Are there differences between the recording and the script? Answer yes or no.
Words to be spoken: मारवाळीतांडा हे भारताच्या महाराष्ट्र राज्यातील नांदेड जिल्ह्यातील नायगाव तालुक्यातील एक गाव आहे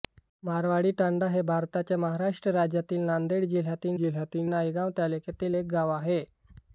yes